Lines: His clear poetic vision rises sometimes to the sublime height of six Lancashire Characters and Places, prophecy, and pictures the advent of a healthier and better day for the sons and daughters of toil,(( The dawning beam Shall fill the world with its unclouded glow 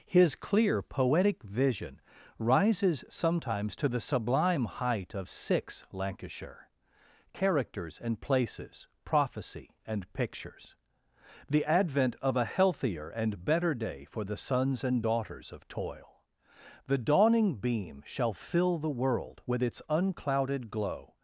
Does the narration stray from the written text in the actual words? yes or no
no